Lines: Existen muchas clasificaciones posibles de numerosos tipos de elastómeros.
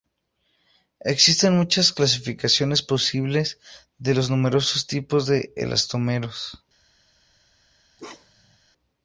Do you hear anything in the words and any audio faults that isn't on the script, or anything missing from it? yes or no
yes